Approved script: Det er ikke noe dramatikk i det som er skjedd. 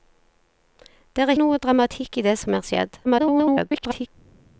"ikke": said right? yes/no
no